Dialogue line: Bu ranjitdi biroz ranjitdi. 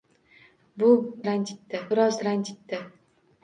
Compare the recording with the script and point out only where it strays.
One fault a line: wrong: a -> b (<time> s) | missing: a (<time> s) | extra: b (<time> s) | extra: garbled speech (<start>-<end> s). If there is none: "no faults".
no faults